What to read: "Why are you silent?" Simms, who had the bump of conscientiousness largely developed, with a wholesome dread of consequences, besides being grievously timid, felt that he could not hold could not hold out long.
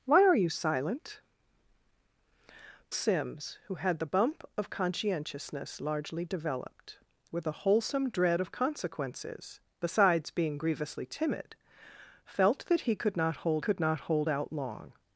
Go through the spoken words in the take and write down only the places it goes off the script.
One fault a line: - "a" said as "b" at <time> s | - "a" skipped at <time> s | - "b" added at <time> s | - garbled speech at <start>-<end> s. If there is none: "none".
none